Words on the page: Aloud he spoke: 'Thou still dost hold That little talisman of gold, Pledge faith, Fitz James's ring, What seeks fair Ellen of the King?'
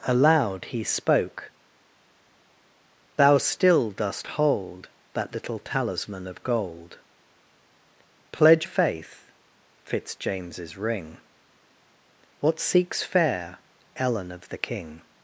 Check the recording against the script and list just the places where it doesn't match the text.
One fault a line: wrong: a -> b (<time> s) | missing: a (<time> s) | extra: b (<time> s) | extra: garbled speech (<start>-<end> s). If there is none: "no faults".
no faults